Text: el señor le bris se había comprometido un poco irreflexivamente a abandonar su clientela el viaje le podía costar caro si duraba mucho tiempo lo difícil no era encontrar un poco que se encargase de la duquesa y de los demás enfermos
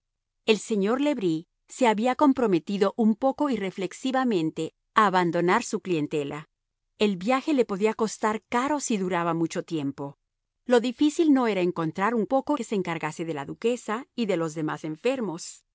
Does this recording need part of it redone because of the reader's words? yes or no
no